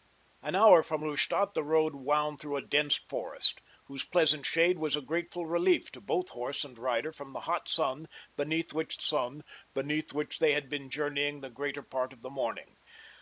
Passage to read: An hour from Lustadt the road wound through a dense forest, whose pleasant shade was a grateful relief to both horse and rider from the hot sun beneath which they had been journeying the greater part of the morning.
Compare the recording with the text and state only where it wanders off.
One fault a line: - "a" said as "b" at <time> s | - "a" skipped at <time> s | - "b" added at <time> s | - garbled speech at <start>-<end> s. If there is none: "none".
- "sun beneath which" added at 9.0 s